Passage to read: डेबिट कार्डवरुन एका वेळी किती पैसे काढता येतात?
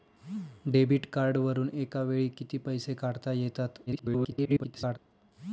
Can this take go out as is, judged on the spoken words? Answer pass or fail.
fail